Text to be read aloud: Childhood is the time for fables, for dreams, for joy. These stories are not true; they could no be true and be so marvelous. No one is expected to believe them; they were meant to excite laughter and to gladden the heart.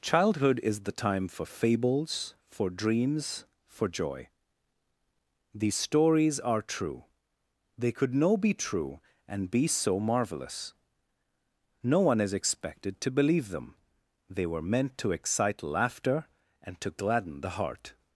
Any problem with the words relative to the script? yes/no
yes